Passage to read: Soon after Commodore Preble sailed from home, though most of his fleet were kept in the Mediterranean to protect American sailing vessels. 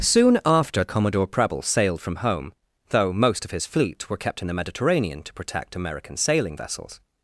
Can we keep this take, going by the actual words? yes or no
yes